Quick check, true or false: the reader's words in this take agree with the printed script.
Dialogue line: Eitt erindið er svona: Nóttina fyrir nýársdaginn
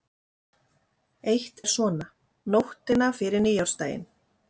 false